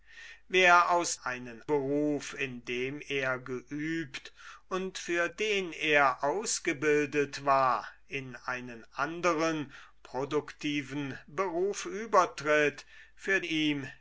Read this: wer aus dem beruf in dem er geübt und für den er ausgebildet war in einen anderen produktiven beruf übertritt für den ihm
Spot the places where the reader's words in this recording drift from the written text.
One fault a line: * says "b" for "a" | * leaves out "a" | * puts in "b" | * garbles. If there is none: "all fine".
* says "einen" for "dem"
* leaves out "den"